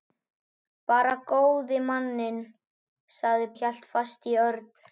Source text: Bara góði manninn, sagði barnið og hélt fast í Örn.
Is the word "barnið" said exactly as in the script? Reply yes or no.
no